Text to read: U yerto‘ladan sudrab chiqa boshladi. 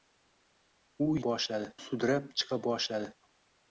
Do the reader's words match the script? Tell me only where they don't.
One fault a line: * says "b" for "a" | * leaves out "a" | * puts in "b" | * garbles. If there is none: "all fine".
* says "boshladi" for "yerto‘ladan"